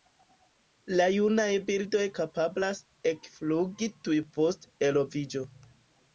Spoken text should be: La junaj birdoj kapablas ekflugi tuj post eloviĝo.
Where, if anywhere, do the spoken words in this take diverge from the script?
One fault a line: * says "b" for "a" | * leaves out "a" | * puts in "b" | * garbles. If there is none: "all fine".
all fine